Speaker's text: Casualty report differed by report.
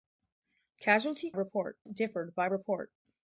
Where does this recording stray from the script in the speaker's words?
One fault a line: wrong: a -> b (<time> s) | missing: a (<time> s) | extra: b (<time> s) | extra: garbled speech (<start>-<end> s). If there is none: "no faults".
no faults